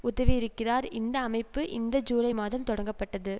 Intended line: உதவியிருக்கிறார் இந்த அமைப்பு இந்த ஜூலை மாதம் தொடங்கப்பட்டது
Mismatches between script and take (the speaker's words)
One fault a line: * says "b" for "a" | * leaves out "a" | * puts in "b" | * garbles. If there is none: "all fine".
all fine